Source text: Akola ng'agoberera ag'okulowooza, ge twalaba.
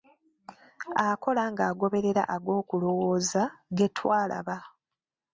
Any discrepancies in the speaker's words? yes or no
no